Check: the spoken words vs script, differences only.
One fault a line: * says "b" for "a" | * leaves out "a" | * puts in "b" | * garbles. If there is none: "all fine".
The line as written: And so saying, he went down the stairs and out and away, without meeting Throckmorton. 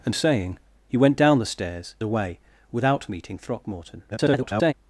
* leaves out "so"
* leaves out "and out and"
* garbles